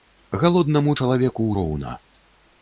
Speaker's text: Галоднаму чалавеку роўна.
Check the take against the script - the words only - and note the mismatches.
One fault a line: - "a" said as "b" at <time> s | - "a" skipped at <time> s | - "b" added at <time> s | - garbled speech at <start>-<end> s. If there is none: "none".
none